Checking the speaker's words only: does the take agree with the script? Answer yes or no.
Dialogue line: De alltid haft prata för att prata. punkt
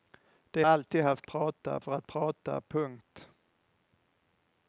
yes